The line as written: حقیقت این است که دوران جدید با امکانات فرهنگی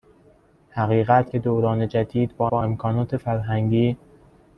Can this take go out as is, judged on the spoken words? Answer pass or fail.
fail